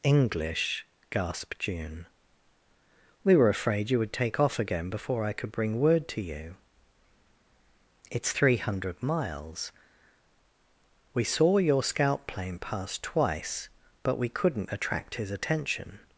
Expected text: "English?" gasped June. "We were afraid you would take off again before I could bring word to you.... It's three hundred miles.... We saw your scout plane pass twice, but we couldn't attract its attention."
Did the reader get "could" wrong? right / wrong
right